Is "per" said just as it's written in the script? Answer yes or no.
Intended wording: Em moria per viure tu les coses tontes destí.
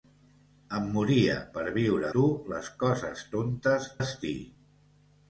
yes